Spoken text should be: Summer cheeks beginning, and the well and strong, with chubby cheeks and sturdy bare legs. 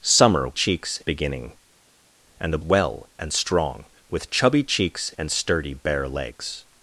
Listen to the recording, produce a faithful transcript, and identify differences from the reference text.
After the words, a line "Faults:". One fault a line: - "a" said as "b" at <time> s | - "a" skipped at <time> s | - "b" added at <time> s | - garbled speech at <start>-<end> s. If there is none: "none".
Summer cheeks beginning, and the well and strong, with chubby cheeks and sturdy bare legs.
Faults:
none